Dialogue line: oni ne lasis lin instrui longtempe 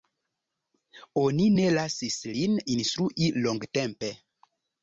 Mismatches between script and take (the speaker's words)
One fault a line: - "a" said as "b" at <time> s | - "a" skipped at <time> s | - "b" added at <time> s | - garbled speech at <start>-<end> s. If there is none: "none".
none